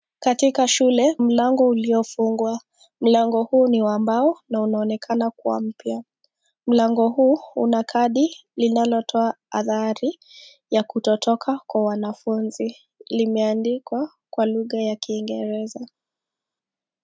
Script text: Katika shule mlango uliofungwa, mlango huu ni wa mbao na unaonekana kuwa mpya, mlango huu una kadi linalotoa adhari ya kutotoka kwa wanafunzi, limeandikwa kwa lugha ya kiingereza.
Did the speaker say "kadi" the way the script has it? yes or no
yes